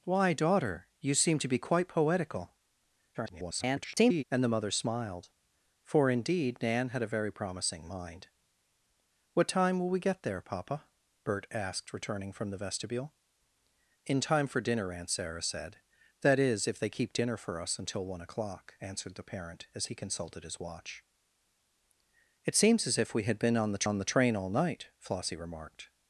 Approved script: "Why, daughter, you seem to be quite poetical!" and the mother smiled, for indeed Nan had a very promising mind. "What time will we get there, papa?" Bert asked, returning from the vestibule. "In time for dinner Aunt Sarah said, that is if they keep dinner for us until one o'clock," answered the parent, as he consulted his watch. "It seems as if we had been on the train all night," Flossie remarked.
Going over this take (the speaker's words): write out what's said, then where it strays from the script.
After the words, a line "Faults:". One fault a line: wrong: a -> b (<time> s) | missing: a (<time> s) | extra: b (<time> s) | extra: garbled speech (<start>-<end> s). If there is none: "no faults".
"Why, daughter, you seem to be quite poetical!" [garbled] and the mother smiled, for indeed Nan had a very promising mind. "What time will we get there, papa?" Bert asked, returning from the vestibule. "In time for dinner Aunt Sarah said, that is if they keep dinner for us until one o'clock," answered the parent, as he consulted his watch. "It seems as if we had been on the on the train all night," Flossie remarked.
Faults:
extra: garbled speech (3.1-4.2 s)
extra: on the (23.8 s)